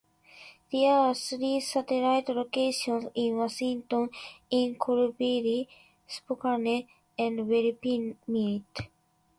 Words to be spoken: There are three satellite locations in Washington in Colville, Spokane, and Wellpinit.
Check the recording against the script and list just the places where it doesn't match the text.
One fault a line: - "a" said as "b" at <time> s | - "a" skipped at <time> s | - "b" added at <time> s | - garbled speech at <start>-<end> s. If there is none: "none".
none